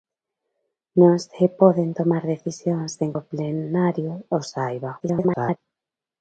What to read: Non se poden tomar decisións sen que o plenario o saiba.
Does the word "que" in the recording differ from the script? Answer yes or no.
yes